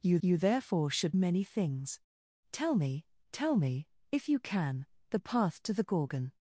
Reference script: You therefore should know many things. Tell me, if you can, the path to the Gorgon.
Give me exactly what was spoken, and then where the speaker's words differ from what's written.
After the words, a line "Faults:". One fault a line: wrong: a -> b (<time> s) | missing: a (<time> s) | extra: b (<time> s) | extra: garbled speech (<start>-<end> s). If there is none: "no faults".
You you therefore should many things. Tell me tell me, if you can, the path to the Gorgon.
Faults:
extra: you (0.2 s)
missing: know (1.2 s)
extra: tell me (3.3 s)